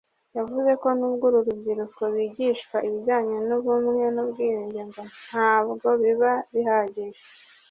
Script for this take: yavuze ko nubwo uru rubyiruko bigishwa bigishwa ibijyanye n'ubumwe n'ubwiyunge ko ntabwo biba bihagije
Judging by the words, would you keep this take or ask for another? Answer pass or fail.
fail